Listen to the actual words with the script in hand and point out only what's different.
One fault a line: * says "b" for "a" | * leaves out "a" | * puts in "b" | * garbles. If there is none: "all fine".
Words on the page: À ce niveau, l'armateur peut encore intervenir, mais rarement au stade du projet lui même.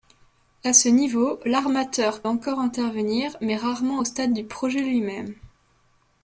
* leaves out "peut"